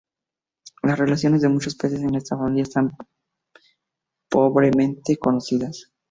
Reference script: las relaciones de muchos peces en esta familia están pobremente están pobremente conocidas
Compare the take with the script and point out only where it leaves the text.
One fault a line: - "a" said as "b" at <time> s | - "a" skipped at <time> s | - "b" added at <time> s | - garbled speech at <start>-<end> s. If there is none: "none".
- "están pobremente" skipped at 5.2 s